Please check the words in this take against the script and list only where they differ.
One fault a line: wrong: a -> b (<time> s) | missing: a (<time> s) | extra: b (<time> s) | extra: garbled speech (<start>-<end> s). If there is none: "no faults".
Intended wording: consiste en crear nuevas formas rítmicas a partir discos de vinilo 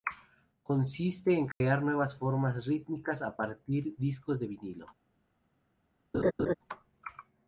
no faults